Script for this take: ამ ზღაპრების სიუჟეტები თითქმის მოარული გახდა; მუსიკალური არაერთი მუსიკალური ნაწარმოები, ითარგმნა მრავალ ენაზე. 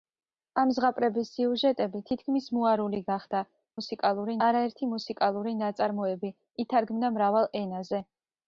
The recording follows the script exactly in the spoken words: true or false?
true